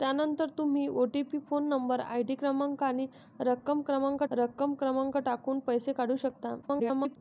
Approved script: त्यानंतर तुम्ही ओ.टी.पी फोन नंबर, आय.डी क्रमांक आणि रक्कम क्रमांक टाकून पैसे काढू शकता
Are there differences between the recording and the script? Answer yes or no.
yes